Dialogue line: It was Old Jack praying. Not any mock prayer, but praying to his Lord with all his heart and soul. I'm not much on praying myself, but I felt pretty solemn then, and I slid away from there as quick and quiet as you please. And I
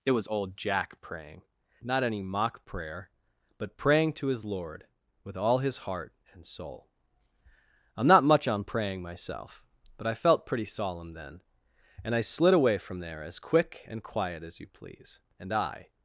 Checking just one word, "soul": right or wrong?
right